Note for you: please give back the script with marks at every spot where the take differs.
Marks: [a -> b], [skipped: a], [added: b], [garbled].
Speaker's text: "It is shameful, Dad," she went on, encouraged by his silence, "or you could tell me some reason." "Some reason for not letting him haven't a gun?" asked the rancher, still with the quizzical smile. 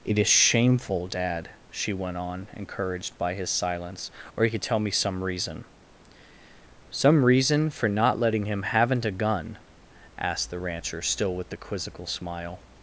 "It is shameful, Dad," she went on, encouraged by his silence, "or you could tell me some reason." "Some reason for not letting him haven't a gun?" asked the rancher, still with the quizzical smile.